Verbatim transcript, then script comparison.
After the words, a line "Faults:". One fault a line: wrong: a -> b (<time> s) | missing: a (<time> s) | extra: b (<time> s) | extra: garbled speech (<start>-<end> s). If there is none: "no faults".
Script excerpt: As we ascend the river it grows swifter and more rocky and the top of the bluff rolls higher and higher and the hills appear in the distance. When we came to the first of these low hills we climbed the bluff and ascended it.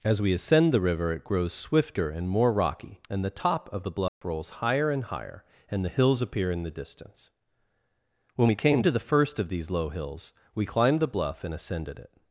As we ascend the river it grows swifter and more rocky and the top of the bluff rolls higher and higher and the hills appear in the distance. When we came to the first of these low hills we climbed the bluff and ascended it.
Faults:
no faults